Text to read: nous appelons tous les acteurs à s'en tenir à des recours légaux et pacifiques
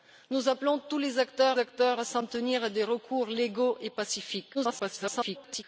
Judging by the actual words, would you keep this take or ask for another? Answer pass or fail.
fail